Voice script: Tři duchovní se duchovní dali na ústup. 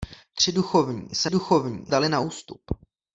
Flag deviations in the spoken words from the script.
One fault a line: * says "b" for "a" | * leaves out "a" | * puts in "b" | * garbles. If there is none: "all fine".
all fine